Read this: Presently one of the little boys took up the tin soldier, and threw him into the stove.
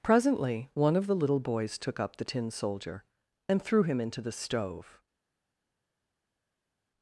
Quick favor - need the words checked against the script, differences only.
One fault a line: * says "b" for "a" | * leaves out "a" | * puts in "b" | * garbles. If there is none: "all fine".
all fine